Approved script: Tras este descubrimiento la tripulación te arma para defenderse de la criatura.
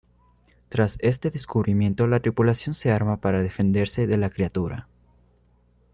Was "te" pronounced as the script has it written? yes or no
no